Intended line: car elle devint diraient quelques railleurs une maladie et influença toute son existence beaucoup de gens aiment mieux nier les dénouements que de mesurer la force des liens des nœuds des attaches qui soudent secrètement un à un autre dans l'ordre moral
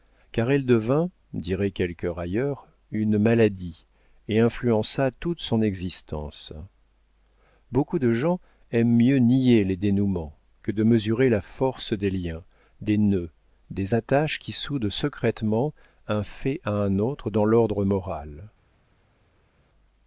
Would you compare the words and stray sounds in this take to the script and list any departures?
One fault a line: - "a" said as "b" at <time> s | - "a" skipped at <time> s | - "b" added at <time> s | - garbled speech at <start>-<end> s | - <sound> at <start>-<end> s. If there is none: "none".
- "fait" added at 16.2 s